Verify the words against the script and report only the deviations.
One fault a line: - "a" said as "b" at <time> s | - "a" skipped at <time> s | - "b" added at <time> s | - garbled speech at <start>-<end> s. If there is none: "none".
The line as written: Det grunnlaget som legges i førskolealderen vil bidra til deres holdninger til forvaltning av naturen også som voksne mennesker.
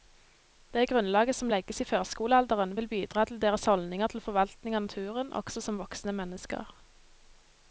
none